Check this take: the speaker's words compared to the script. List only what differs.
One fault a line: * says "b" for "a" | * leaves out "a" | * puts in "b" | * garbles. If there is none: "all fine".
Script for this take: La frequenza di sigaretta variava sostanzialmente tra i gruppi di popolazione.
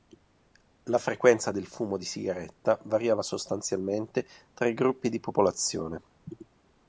* puts in "del fumo"